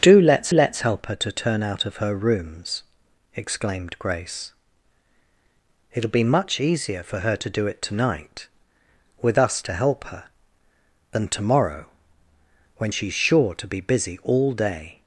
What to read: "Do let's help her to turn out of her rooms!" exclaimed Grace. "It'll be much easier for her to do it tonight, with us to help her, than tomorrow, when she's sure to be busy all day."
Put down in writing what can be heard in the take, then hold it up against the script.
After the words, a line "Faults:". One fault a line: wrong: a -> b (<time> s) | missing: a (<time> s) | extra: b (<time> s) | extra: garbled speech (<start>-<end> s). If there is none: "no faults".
"Do let's let's help her to turn out of her rooms!" exclaimed Grace. "It'll be much easier for her to do it tonight, with us to help her, than tomorrow, when she's sure to be busy all day."
Faults:
extra: let's (0.5 s)